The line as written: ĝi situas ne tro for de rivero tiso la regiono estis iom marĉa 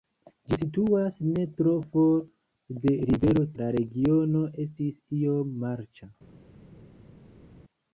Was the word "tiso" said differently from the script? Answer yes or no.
yes